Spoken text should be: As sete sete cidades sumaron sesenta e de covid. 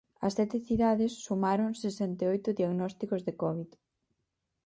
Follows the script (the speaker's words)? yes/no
no